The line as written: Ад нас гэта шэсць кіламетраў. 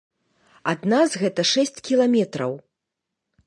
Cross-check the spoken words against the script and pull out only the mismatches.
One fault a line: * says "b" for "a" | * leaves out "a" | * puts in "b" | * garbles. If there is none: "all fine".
all fine